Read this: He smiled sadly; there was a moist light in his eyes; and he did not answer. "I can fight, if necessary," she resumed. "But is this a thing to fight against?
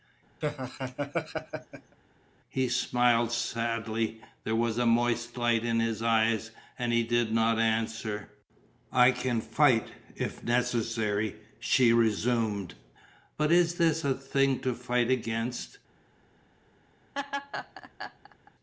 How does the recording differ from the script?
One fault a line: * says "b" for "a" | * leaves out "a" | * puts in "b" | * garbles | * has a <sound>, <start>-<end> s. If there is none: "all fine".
* has a laugh, 0.4-2.0 s
* has a laugh, 17.1-18.5 s